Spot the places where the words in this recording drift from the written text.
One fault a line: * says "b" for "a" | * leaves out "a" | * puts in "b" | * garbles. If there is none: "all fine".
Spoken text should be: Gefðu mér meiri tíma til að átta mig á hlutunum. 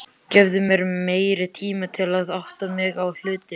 all fine